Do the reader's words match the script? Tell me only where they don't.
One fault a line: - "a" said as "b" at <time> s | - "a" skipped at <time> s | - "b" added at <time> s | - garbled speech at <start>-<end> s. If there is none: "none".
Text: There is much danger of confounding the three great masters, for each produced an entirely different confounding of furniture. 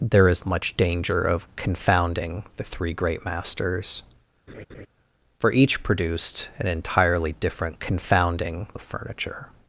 none